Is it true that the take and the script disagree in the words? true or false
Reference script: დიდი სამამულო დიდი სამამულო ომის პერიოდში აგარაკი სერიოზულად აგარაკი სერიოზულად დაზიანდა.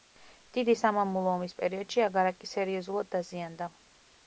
true